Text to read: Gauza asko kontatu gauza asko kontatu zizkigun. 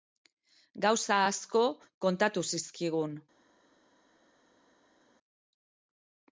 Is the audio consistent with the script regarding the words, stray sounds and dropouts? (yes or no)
no